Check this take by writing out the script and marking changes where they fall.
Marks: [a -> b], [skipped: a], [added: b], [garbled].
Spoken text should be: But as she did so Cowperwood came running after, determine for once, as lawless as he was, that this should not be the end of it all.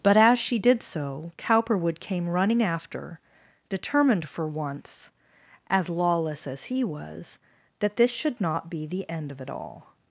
But as she did so Cowperwood came running after, [determine -> determined] for once, as lawless as he was, that this should not be the end of it all.